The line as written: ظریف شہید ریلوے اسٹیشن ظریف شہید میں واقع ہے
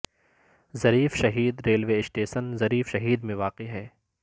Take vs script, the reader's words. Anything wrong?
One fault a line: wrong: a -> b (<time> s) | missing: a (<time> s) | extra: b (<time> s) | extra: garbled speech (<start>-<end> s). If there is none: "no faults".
no faults